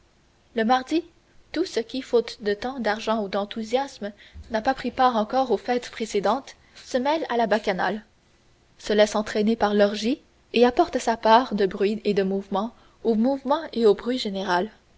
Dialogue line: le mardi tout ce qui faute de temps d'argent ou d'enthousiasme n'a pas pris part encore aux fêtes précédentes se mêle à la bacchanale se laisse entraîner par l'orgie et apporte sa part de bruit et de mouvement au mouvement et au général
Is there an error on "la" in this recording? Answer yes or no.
no